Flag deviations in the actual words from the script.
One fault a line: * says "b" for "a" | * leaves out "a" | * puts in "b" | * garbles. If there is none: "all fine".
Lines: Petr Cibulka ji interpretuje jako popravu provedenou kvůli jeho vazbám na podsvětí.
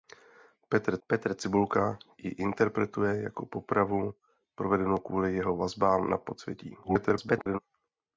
* puts in "petr"
* garbles